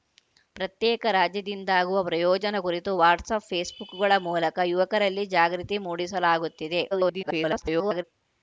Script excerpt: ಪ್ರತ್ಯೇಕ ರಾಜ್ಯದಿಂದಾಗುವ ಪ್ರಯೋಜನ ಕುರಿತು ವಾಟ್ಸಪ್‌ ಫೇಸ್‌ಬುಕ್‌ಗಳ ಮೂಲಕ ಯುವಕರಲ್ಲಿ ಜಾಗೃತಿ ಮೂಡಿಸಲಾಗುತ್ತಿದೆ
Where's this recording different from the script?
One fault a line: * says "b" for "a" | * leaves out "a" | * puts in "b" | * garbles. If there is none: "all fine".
* garbles